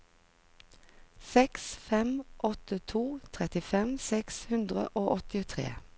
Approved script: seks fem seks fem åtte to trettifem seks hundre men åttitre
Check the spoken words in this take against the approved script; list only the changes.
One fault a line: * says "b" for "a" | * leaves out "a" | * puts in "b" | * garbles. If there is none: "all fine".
* leaves out "seks fem"
* says "og" for "men"